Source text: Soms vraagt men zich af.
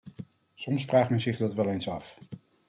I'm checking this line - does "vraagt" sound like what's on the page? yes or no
yes